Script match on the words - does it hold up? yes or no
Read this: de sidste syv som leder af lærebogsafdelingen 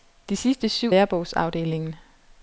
no